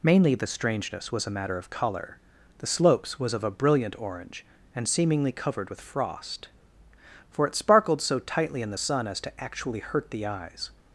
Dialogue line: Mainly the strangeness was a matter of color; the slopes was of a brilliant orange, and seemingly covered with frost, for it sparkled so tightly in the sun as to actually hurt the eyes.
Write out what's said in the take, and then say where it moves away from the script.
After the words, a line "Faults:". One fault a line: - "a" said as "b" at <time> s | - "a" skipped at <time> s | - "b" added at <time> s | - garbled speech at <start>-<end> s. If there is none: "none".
Mainly the strangeness was a matter of color; the slopes was of a brilliant orange, and seemingly covered with frost, for it sparkled so tightly in the sun as to actually hurt the eyes.
Faults:
none